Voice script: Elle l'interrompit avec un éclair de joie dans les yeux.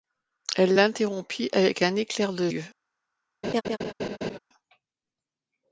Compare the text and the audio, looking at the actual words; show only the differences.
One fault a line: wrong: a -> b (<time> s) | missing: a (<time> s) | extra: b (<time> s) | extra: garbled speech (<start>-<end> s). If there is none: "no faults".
missing: joie dans les (2.5 s)